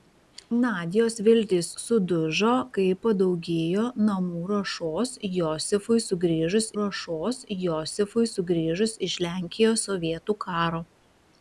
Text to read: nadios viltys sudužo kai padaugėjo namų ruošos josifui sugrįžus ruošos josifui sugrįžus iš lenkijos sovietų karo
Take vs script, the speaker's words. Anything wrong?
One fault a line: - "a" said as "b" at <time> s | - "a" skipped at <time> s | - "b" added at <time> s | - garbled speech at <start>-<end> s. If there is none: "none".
none